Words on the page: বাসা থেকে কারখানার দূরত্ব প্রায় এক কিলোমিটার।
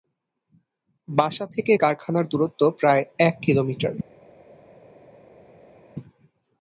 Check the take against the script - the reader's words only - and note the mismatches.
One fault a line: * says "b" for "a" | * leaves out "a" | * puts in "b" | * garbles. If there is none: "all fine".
all fine